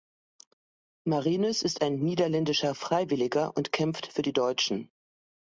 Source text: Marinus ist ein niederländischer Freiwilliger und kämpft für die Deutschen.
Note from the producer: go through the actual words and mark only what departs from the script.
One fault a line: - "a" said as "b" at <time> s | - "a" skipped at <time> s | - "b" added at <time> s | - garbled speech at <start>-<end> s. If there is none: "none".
none